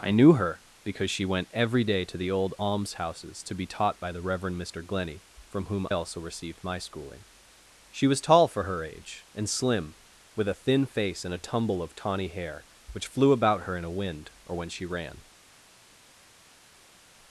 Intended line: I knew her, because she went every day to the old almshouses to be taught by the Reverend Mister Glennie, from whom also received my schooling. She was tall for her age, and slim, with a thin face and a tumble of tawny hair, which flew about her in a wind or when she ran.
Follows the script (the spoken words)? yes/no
yes